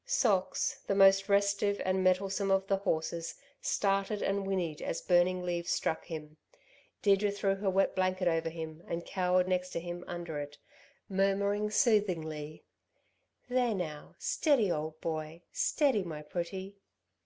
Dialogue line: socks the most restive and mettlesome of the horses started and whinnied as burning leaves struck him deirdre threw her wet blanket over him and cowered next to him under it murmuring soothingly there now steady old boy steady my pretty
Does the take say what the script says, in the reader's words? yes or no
yes